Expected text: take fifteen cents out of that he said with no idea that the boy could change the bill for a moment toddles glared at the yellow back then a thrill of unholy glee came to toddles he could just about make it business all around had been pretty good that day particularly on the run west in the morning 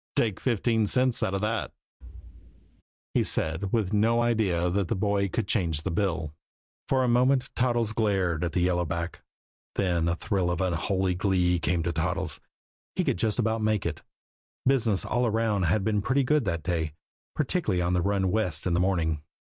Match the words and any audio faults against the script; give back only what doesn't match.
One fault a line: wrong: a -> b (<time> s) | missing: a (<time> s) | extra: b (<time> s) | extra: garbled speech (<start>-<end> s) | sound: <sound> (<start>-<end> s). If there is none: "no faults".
sound: thud (2.0-2.8 s)